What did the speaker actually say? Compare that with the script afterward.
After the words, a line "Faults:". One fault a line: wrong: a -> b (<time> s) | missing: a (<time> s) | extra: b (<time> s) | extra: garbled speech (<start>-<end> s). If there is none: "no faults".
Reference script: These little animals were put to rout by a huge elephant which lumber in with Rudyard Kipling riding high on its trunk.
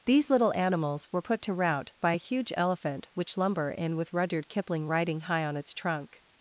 These little animals were put to rout by a huge elephant which lumber in with Rudyard Kipling riding high on its trunk.
Faults:
no faults